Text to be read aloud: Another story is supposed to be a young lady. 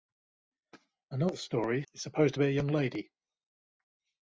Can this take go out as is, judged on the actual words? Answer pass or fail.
pass